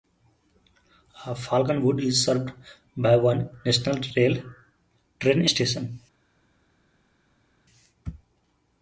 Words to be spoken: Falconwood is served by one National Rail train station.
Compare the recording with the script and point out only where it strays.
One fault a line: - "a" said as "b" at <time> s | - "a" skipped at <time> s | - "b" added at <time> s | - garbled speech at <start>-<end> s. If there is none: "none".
none